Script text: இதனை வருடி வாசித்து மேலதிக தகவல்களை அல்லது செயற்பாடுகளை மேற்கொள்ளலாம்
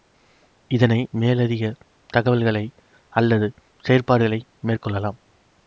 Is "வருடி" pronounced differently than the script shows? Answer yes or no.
yes